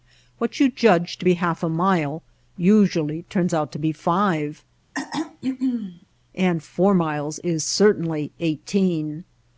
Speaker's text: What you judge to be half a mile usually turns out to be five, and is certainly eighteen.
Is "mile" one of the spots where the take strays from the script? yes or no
no